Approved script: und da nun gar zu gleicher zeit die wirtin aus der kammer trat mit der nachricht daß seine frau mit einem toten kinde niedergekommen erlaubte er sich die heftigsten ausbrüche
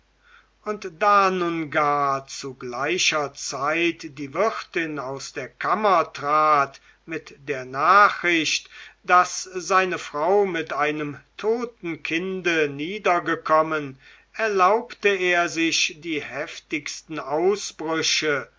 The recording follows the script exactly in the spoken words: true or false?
true